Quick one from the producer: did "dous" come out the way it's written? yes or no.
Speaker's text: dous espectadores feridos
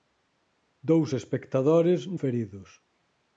yes